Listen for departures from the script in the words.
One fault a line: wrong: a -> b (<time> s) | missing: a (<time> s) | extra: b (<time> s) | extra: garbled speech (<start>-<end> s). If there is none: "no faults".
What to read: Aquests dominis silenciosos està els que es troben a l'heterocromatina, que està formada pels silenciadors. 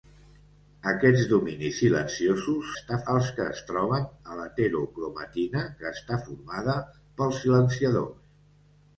no faults